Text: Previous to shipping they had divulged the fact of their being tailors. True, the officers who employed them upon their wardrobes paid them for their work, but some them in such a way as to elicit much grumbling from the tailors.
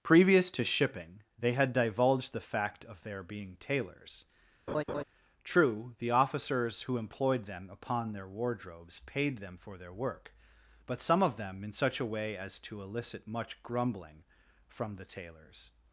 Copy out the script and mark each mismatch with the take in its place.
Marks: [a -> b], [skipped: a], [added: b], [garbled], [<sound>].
Previous to shipping they had divulged the fact of their being tailors. [laugh] True, the officers who employed them upon their wardrobes paid them for their work, but some [added: of] them in such a way as to elicit much grumbling from the tailors.